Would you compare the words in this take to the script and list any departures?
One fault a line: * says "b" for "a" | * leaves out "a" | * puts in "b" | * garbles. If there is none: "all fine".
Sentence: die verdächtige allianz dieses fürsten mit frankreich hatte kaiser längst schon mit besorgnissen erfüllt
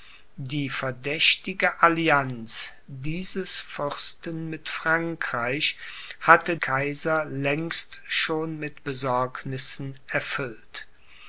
all fine